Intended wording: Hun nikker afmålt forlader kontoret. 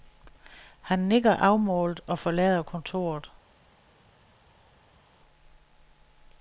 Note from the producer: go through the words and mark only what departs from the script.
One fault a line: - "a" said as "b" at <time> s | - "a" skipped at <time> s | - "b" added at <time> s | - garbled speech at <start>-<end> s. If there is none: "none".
- "Hun" said as "Han" at 0.8 s
- "og" added at 2.1 s